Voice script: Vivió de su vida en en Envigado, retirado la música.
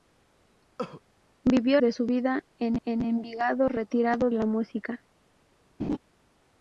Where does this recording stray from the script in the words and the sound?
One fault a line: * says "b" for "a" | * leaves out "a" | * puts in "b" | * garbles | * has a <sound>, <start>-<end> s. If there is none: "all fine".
* has a cough, 0.8-1.0 s
* has a laugh, 5.8-6.0 s